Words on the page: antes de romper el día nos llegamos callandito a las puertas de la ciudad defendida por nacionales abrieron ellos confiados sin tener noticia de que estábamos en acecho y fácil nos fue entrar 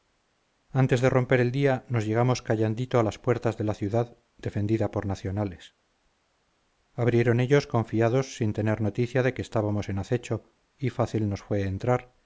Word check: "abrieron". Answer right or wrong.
right